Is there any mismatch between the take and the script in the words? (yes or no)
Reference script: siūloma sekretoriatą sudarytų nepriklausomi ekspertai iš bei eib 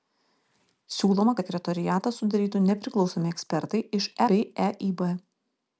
no